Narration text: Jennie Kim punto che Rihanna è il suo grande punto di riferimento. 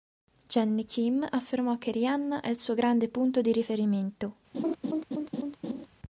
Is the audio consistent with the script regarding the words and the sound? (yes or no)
no